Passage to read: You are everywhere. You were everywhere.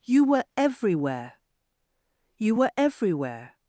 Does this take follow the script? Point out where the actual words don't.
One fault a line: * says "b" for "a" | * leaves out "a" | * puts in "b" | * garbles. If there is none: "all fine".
* says "were" for "are"